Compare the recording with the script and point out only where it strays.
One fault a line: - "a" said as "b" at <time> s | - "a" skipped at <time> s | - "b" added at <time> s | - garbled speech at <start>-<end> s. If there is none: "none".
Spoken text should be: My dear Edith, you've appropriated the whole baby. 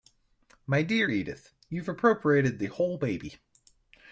none